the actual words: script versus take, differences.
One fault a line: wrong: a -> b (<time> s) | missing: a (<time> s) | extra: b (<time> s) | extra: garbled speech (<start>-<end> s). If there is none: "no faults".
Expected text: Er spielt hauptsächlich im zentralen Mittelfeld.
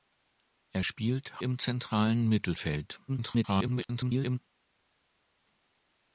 missing: hauptsächlich (1.4 s)
extra: garbled speech (3.1-4.4 s)